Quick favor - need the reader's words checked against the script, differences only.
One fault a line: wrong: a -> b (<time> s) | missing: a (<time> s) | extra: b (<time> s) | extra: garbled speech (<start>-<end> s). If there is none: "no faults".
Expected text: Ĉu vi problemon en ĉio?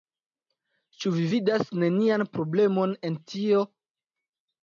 extra: vidas nenian (1.3 s)
wrong: ĉio -> tio (3.3 s)